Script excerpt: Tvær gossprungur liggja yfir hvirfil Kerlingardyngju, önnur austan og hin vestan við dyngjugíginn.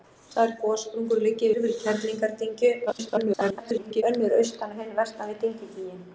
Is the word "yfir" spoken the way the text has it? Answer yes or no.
no